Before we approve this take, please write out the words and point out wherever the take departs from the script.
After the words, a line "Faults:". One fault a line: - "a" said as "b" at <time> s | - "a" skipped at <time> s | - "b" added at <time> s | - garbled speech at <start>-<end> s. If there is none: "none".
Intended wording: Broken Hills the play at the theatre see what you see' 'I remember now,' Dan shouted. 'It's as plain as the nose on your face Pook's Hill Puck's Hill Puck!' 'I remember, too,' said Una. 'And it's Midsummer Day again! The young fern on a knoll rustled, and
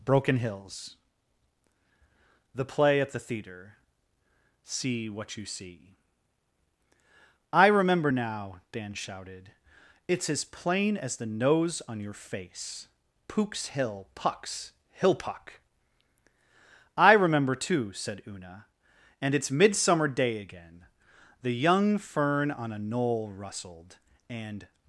Broken Hills the play at the theatre see what you see' 'I remember now,' Dan shouted. 'It's as plain as the nose on your face Pook's Hill Puck's Hill Puck!' 'I remember, too,' said Una. 'And it's Midsummer Day again! The young fern on a knoll rustled, and
Faults:
none